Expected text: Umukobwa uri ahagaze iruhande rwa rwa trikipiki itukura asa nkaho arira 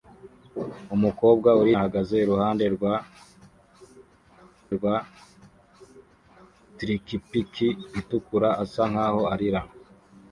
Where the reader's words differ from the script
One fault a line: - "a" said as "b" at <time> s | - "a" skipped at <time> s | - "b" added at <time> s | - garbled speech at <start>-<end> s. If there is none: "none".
none